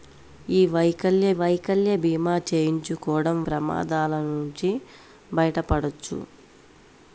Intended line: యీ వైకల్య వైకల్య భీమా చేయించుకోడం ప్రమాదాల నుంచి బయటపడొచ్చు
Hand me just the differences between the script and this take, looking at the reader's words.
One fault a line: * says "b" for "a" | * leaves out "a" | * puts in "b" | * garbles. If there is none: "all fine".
all fine